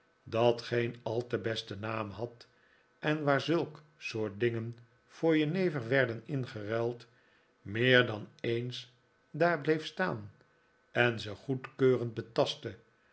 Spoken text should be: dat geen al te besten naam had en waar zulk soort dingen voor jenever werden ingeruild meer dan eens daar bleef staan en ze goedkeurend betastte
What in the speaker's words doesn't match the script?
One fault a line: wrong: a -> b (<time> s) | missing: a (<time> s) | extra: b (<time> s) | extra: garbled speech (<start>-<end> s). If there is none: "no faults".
no faults